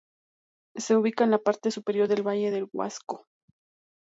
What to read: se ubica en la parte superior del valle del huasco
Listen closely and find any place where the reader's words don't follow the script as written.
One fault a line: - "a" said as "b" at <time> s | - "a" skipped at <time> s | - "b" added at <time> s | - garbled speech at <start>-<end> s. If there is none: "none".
none